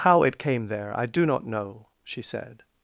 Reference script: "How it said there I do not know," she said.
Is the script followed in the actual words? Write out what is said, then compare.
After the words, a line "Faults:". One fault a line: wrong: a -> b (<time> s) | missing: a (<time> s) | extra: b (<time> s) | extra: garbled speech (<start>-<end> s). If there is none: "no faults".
"How it came there I do not know," she said.
Faults:
wrong: said -> came (0.4 s)